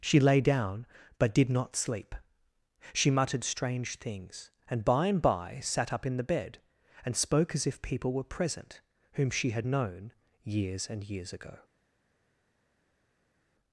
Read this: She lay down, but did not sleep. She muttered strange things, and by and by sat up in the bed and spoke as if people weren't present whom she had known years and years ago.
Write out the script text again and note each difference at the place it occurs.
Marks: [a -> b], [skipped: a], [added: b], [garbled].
She lay down, but did not sleep. She muttered strange things, and by and by sat up in the bed and spoke as if people [weren't -> were] present whom she had known years and years ago.